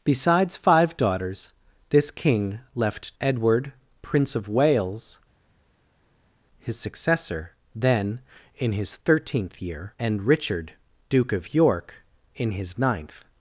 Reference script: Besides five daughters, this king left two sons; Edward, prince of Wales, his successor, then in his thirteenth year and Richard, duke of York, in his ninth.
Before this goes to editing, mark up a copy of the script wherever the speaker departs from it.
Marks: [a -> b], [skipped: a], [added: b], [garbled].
Besides five daughters, this king left [skipped: two sons;] Edward, prince of Wales, his successor, then in his thirteenth year and Richard, duke of York, in his ninth.